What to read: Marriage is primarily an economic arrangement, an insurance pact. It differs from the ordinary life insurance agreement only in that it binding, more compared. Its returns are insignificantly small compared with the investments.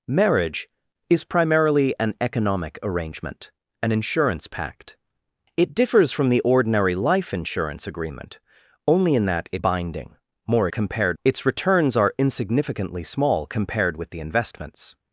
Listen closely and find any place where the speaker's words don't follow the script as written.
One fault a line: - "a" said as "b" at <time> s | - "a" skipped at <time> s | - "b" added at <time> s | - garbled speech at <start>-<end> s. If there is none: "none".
none